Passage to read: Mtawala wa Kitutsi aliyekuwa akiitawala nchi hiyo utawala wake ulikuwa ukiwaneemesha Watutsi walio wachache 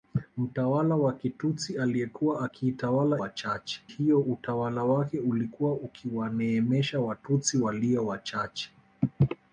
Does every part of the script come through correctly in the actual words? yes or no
no